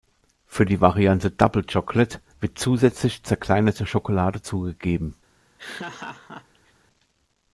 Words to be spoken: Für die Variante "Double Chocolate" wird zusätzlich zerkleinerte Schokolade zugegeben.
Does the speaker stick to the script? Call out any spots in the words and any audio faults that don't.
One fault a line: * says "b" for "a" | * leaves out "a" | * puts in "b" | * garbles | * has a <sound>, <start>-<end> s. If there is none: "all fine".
* has a laugh, 5.6-6.7 s